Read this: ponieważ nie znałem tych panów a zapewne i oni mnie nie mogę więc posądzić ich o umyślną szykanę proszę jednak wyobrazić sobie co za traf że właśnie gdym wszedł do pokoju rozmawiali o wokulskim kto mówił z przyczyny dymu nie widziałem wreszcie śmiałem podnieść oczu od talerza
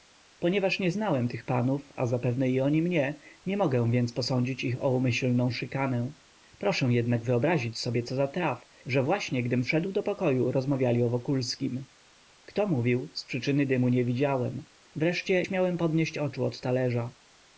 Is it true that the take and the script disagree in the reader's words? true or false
false